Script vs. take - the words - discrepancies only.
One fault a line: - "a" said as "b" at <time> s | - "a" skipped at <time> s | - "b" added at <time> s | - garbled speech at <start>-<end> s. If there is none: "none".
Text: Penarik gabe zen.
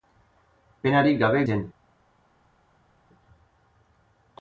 none